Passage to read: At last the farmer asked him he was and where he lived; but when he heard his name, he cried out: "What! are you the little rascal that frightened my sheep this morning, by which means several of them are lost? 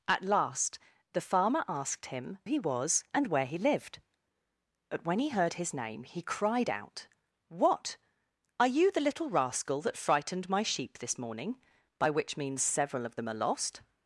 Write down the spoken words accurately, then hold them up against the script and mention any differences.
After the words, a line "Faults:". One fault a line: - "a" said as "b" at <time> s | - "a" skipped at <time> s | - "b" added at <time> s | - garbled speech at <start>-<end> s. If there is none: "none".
At last the farmer asked him he was and where he lived; but when he heard his name, he cried out: "What! are you the little rascal that frightened my sheep this morning, by which means several of them are lost?
Faults:
none